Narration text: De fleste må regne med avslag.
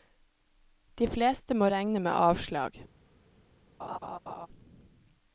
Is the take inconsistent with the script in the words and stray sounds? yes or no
yes